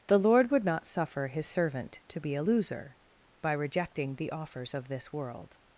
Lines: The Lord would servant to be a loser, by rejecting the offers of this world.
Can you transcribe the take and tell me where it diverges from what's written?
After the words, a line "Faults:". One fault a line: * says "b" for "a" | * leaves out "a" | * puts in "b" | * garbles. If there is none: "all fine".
The Lord would not suffer his servant to be a loser, by rejecting the offers of this world.
Faults:
* puts in "not suffer his"